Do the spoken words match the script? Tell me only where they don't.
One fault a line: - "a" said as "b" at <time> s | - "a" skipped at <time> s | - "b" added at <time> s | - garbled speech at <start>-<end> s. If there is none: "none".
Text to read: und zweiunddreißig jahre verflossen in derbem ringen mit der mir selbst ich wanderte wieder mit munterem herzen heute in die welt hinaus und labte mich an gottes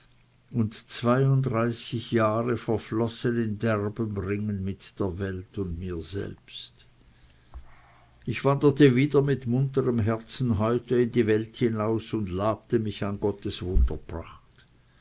- "welt und" added at 5.2 s